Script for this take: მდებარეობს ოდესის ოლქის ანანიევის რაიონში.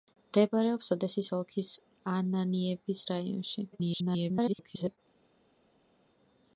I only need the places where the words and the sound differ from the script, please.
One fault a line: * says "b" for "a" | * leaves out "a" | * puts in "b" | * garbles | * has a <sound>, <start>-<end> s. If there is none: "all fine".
* garbles